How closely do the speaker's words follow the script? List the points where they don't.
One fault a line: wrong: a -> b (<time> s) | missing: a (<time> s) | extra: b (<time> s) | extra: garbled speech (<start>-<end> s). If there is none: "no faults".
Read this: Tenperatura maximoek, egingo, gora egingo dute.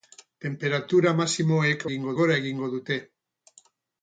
no faults